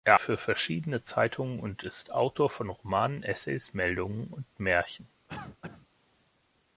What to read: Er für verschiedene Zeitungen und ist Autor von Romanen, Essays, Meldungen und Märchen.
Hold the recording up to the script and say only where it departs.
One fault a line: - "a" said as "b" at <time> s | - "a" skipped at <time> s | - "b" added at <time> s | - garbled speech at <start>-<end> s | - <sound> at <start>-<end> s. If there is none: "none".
- cough at 5.3-5.9 s